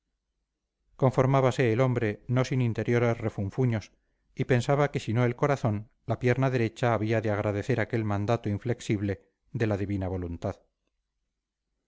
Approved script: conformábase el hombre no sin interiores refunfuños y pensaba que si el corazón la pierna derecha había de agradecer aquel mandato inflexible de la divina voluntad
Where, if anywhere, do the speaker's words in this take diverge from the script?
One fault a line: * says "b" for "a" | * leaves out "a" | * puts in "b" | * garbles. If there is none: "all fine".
* puts in "no"